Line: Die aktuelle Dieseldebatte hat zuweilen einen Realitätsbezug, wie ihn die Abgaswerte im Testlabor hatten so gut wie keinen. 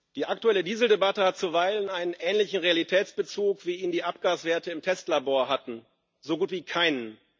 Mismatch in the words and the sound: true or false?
true